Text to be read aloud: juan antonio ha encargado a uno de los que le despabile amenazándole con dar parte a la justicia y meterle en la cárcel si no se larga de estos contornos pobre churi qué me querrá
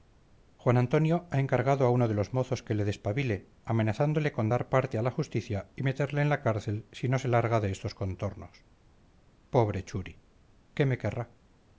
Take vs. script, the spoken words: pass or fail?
fail